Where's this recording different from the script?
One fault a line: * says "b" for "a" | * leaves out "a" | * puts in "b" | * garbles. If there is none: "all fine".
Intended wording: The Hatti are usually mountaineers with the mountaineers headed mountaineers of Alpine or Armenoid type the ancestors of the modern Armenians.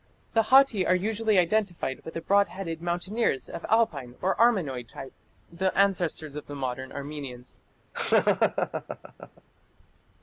* says "identified" for "mountaineers"
* says "broad" for "mountaineers"